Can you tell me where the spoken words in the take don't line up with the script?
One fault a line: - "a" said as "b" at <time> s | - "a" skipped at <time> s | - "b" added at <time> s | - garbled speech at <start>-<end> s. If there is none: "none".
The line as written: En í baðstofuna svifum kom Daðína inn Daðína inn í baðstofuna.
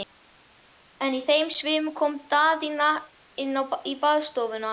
- "baðstofuna" said as "þeim" at 1.3 s
- "Daðína inn" skipped at 3.6 s